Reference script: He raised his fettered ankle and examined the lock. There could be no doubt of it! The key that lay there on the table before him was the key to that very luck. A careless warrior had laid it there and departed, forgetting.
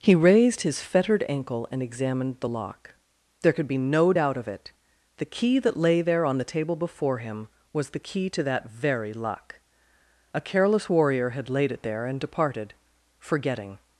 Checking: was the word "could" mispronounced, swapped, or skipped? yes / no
no